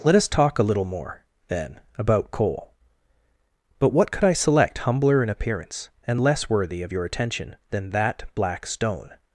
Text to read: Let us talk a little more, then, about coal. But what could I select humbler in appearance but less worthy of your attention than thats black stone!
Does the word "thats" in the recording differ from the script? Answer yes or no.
yes